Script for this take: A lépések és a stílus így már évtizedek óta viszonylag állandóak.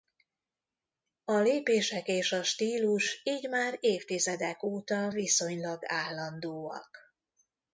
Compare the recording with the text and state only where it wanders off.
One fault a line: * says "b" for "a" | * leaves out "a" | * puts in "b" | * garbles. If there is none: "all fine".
all fine